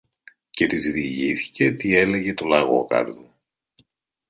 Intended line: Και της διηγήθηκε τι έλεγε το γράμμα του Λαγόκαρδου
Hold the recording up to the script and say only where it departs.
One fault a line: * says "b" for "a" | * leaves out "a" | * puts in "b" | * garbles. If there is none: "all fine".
* leaves out "το γράμμα"